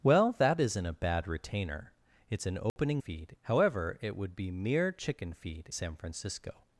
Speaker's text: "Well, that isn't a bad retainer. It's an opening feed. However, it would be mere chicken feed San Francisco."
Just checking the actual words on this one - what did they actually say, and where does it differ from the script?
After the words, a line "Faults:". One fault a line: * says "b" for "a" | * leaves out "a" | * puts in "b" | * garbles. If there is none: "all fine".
"Well, that isn't a bad retainer. It's an opening feed. However, it would be mere chicken feed San Francisco."
Faults:
all fine